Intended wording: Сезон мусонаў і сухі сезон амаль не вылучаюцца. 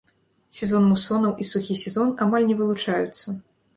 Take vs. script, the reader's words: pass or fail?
pass